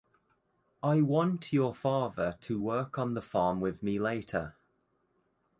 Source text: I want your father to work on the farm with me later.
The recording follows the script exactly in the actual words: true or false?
true